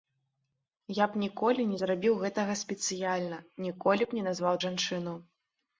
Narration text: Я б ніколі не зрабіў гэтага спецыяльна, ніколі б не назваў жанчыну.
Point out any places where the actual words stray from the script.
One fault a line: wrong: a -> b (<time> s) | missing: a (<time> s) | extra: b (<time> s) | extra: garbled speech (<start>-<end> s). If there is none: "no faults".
no faults